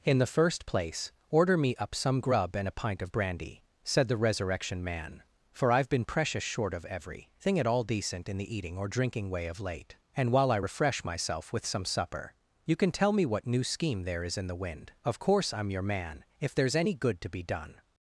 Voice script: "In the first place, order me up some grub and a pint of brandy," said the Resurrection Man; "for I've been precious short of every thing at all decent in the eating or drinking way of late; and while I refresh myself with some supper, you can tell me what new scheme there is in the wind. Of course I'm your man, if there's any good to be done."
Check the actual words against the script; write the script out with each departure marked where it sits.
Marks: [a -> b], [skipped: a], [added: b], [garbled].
"In the first place, order me up some grub and a pint of brandy," said the Resurrection Man; "for I've been precious short of every thing at all decent in the eating or drinking way of late; and while I refresh myself with some supper, you can tell me what new scheme there is in the wind. Of course I'm your man, if there's any good to be done."